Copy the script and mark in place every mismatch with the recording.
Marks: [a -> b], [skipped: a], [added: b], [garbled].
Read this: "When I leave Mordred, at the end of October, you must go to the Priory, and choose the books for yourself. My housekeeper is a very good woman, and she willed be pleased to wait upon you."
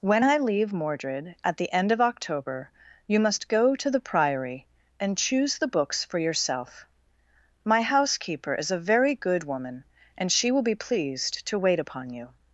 "When I leave Mordred, at the end of October, you must go to the Priory, and choose the books for yourself. My housekeeper is a very good woman, and she [willed -> will] be pleased to wait upon you."